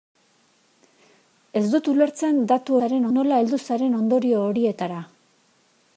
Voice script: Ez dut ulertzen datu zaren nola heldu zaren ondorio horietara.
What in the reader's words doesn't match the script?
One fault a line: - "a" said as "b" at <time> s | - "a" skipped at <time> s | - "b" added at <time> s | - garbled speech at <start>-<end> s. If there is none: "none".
none